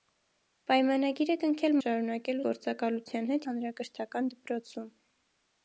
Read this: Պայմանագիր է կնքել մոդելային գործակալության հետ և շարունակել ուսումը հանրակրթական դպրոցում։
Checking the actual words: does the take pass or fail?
fail